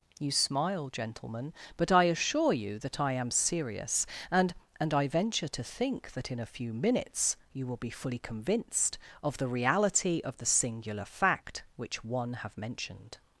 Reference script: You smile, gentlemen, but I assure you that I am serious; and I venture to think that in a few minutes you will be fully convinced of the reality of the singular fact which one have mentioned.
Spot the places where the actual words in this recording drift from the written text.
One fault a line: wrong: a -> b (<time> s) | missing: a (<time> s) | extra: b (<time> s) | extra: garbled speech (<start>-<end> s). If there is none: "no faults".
extra: and (4.8 s)